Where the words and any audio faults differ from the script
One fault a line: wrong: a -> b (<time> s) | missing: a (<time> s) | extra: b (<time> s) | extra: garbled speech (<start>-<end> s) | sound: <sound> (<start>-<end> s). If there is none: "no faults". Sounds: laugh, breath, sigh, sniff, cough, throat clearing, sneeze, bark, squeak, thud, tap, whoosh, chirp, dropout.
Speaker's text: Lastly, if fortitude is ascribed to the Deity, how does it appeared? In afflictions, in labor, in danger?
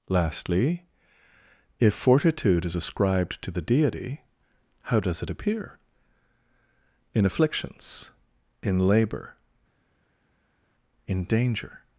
wrong: appeared -> appear (5.3 s)